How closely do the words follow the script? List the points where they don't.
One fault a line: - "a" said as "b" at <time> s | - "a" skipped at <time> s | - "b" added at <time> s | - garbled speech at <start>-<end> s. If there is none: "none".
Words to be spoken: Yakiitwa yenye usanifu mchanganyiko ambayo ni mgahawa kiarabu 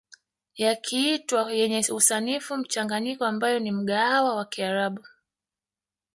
- "wa" added at 4.3 s